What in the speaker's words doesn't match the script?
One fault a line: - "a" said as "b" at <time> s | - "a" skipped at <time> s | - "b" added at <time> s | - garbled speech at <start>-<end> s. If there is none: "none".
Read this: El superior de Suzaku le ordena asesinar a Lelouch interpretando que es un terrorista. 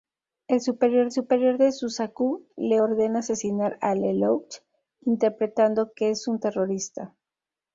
- "superior" added at 1.1 s